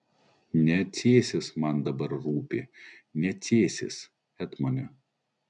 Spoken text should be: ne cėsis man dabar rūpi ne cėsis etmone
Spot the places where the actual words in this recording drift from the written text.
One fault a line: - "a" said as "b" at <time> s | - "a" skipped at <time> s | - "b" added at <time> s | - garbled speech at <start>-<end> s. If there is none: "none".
none